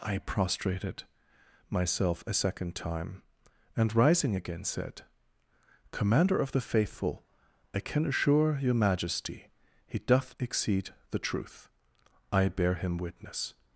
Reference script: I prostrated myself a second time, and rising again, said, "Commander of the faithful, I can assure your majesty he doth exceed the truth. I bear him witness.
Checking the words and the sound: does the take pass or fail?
pass